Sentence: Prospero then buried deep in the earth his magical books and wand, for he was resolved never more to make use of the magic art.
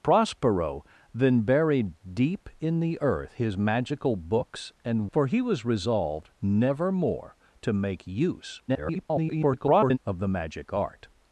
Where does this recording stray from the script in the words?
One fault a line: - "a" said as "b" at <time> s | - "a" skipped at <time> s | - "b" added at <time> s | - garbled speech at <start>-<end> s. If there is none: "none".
- "wand" skipped at 5.1 s
- garbled speech at 8.7-10.0 s